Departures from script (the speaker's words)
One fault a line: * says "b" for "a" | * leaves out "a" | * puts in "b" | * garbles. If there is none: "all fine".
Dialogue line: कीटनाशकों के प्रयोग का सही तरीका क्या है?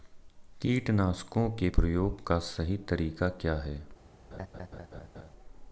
all fine